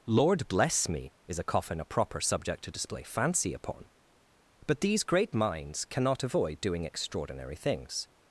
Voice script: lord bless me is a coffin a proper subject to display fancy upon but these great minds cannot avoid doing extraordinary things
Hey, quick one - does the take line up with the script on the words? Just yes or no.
yes